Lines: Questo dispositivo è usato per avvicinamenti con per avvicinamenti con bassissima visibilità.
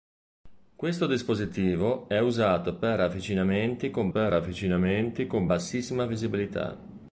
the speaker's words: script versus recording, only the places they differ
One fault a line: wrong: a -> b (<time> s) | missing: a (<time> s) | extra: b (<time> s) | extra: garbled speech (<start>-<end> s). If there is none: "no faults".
no faults